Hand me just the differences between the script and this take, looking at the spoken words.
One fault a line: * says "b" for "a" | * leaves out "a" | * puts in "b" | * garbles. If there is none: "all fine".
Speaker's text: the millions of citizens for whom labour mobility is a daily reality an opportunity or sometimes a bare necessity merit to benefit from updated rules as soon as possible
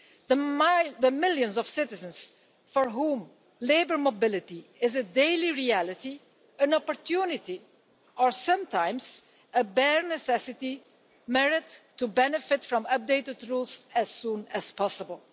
all fine